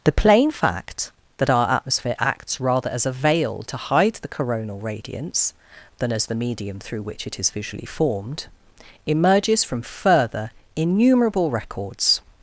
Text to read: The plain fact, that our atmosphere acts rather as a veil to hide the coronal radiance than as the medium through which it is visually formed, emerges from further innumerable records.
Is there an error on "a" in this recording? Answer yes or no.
no